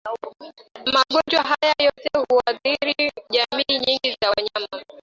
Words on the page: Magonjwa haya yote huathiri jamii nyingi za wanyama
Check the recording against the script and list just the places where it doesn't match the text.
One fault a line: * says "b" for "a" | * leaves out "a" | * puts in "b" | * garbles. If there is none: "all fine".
all fine